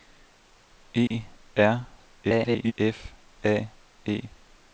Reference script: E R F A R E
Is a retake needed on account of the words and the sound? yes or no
yes